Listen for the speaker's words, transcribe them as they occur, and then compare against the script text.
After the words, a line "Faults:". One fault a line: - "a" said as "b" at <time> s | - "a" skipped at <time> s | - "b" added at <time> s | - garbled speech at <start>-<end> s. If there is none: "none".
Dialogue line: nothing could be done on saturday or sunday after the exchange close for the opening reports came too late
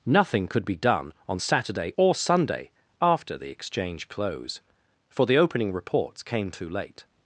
nothing could be done on saturday or sunday after the exchange close for the opening reports came too late
Faults:
none